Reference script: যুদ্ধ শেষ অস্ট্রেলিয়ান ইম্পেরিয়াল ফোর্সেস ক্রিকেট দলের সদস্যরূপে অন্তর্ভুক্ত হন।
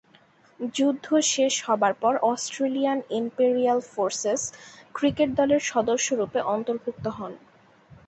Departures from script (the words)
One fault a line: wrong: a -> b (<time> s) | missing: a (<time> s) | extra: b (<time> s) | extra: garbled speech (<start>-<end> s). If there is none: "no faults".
extra: হবার পর (1.7 s)